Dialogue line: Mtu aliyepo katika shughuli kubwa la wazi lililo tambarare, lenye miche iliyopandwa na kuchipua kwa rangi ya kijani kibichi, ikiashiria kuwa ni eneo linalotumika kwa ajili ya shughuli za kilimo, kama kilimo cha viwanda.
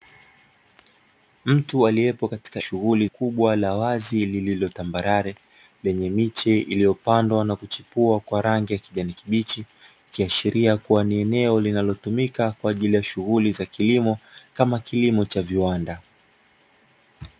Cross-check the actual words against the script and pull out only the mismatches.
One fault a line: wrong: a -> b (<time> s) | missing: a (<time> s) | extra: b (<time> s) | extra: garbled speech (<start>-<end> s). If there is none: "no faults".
no faults